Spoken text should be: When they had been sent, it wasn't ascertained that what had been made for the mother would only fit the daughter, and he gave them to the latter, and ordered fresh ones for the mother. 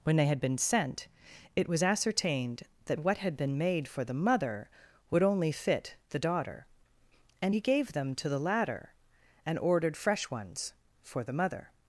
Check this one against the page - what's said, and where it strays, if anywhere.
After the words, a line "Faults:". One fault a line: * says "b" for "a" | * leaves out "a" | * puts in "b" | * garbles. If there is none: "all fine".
When they had been sent, it was ascertained that what had been made for the mother would only fit the daughter, and he gave them to the latter, and ordered fresh ones for the mother.
Faults:
* says "was" for "wasn't"